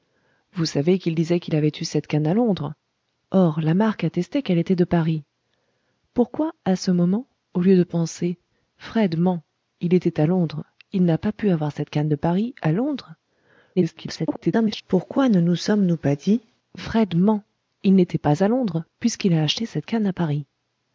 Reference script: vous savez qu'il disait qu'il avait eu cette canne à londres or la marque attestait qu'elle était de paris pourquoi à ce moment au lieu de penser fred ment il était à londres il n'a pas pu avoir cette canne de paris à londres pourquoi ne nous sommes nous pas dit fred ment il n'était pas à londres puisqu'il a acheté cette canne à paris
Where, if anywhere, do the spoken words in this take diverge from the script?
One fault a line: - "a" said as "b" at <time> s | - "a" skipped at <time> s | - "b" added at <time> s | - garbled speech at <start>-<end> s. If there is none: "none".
- garbled speech at 13.8-14.8 s